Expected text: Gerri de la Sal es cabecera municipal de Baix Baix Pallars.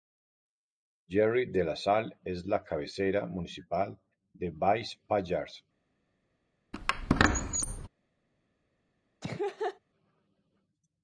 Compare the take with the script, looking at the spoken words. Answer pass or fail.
fail